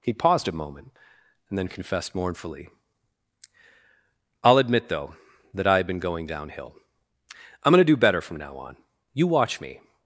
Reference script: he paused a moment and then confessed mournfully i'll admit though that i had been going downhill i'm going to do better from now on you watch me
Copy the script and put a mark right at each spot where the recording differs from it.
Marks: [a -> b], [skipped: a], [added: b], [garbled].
he paused a moment and then confessed mournfully i'll admit though that i had been going downhill i'm going to do better from now on you watch me